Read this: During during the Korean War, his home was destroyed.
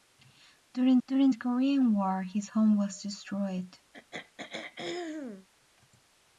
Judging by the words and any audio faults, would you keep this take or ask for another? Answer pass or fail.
fail